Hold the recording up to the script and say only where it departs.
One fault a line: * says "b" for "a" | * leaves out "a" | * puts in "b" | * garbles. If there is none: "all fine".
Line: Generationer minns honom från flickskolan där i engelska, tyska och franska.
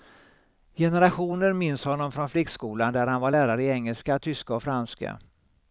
* puts in "han var lärare"